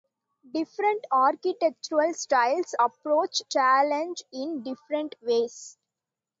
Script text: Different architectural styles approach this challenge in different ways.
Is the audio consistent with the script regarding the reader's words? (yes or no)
no